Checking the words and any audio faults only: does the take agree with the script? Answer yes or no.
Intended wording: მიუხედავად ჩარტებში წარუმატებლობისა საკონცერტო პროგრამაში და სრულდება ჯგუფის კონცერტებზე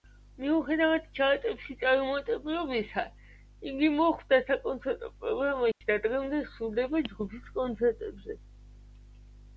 no